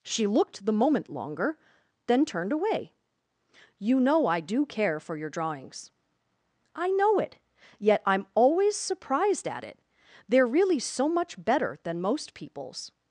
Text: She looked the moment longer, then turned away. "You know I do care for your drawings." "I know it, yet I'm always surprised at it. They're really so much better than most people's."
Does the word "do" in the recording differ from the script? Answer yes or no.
no